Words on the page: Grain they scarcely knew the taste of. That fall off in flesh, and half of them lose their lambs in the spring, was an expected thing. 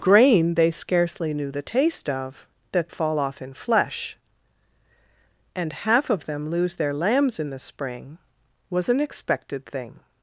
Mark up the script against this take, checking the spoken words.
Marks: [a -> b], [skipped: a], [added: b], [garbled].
Grain they scarcely knew the taste of. That fall off in flesh, and half of them lose their lambs in the spring, was an expected thing.